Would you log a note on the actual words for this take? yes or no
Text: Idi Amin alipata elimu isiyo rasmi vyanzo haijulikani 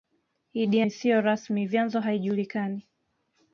yes